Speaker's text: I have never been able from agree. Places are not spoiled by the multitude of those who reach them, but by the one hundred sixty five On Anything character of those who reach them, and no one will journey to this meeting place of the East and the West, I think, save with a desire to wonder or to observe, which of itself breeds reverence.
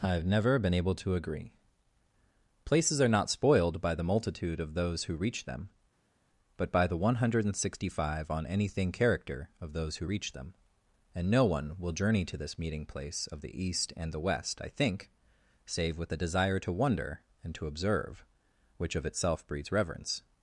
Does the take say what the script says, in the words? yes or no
no